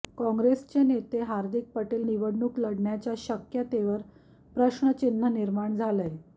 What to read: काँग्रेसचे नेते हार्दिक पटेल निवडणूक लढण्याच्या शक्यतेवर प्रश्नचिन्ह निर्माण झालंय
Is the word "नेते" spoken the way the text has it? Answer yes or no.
yes